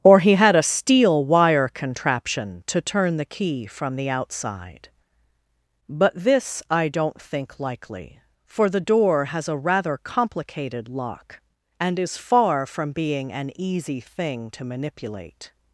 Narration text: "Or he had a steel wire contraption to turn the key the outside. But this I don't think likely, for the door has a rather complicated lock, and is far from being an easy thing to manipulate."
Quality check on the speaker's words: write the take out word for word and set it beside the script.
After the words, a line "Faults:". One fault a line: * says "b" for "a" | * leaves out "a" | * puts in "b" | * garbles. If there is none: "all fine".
"Or he had a steel wire contraption to turn the key from the outside. But this I don't think likely, for the door has a rather complicated lock, and is far from being an easy thing to manipulate."
Faults:
* puts in "from"